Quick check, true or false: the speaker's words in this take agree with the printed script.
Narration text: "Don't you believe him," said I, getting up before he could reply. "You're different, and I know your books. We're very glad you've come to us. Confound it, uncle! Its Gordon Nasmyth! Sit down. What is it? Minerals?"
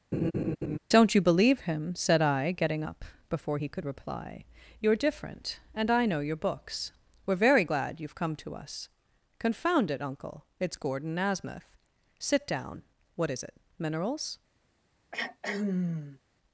true